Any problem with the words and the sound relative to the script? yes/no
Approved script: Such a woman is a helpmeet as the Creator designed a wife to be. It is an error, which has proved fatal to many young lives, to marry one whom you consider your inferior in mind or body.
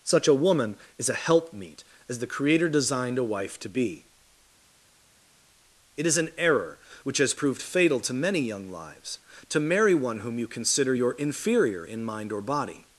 no